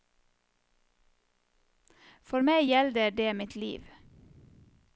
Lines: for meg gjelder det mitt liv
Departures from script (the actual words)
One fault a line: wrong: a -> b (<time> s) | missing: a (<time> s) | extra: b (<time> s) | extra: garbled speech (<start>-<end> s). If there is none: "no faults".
no faults